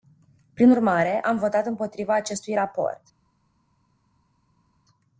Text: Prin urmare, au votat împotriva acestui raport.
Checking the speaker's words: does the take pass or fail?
fail